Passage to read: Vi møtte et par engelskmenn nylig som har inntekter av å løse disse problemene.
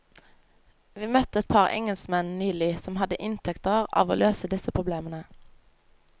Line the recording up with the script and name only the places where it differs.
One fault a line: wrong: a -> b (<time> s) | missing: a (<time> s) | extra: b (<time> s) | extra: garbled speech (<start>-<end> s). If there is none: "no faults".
wrong: har -> hadde (3.0 s)